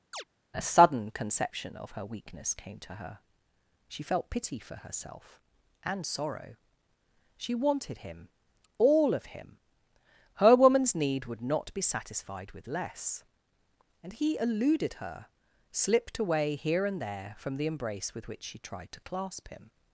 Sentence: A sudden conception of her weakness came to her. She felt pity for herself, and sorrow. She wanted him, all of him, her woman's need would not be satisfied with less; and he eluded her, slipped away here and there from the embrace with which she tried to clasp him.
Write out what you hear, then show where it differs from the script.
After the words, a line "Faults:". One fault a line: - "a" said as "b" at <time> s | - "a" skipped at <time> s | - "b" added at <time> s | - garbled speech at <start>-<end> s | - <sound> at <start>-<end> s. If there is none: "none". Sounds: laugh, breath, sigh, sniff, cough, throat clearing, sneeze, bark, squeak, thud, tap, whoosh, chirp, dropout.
A sudden conception of her weakness came to her. She felt pity for herself, and sorrow. She wanted him, all of him, her woman's need would not be satisfied with less; and he eluded her, slipped away here and there from the embrace with which she tried to clasp him.
Faults:
- chirp at 0.1-0.2 s